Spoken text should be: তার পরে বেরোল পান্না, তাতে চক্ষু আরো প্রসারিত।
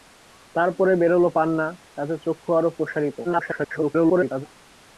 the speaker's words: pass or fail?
fail